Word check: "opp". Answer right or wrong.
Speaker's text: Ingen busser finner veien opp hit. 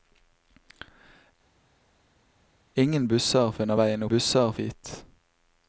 wrong